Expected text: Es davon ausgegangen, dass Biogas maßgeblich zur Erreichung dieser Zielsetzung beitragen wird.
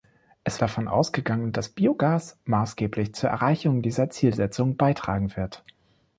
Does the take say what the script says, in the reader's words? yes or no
yes